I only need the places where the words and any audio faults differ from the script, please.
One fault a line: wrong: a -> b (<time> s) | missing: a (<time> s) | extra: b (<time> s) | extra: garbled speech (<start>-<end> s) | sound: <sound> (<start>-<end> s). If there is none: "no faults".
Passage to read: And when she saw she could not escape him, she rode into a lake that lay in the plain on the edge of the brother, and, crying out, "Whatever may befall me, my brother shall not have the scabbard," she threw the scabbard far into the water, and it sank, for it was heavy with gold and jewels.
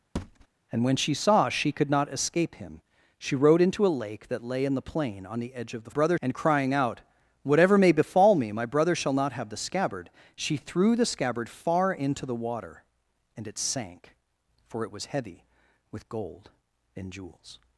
sound: thud (0.2-0.5 s)